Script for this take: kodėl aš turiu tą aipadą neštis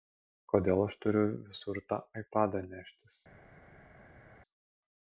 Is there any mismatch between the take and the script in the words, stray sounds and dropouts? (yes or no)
yes